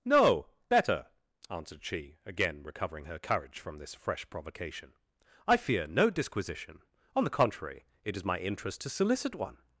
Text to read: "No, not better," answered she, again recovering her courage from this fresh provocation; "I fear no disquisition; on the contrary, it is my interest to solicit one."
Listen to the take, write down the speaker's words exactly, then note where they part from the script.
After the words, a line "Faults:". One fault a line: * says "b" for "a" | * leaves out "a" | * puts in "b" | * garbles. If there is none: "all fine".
"No, better," answered she, again recovering her courage from this fresh provocation; "I fear no disquisition; on the contrary, it is my interest to solicit one."
Faults:
* leaves out "not"